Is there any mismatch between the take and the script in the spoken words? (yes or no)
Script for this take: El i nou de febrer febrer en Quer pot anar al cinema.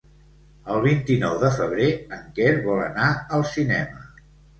yes